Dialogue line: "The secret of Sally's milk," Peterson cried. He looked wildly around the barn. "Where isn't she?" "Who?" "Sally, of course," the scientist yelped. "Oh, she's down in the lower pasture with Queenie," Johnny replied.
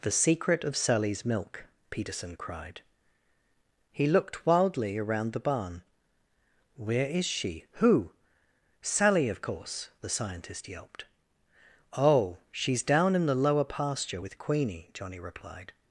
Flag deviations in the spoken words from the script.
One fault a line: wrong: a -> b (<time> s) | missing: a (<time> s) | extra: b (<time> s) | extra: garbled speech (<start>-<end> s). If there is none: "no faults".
wrong: isn't -> is (7.0 s)